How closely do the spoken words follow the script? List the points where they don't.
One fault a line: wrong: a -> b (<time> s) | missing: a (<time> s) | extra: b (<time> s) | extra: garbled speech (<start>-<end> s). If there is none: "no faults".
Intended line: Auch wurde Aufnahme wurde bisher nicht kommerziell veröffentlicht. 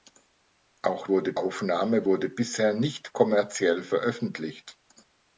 no faults